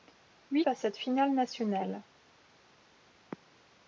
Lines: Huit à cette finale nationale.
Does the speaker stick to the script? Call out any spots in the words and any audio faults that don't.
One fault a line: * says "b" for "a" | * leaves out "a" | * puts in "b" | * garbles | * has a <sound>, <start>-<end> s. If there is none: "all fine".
all fine